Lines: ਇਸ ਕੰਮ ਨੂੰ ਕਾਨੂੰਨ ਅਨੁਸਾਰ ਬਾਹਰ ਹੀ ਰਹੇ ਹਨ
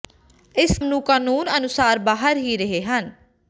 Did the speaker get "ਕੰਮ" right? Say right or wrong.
wrong